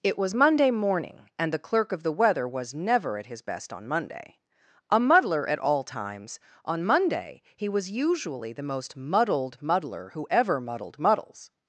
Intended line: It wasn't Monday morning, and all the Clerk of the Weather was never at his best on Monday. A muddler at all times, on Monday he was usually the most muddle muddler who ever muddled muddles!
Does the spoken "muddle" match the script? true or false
false